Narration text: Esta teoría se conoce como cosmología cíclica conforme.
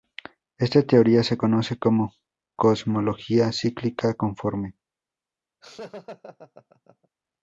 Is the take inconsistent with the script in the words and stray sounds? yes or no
yes